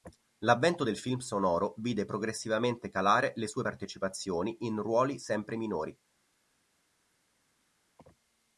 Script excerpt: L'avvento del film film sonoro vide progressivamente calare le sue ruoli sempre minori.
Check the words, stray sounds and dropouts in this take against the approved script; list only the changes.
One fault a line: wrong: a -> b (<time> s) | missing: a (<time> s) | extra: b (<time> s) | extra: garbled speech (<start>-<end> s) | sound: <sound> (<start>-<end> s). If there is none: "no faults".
missing: film (1.2 s)
extra: partecipazioni in (3.6 s)